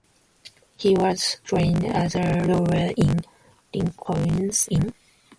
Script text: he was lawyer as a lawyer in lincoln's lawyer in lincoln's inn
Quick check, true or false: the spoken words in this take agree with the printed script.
false